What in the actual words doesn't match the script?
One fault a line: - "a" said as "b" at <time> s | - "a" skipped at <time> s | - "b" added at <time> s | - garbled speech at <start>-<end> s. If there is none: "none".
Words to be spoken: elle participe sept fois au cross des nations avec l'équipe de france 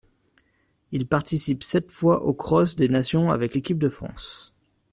- "elle" said as "il" at 0.9 s